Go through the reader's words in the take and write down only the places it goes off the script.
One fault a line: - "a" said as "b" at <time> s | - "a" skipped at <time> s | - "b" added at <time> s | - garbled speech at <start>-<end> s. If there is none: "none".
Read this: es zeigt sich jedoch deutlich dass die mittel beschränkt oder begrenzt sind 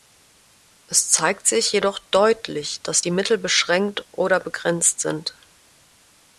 none